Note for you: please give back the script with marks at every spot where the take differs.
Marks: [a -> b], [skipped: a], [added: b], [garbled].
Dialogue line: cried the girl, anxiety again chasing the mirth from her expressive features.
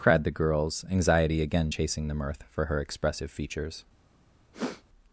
cried the [girl, -> girls] anxiety again chasing the mirth [from -> for] her expressive features.